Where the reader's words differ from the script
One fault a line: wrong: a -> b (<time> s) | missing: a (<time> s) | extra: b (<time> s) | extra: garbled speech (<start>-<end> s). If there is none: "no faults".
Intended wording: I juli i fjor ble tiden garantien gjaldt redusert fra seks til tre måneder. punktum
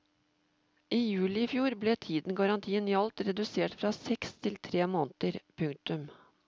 no faults